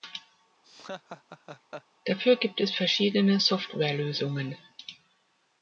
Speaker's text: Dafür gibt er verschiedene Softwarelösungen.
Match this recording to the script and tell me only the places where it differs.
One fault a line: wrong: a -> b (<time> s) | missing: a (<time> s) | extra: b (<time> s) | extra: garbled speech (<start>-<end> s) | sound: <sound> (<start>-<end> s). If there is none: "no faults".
sound: laugh (0.6-1.9 s)
wrong: er -> es (2.6 s)